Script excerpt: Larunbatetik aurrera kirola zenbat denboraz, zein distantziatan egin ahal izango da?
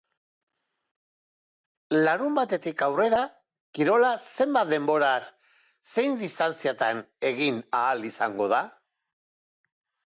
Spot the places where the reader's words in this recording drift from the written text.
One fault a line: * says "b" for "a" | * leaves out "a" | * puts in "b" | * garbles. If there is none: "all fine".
all fine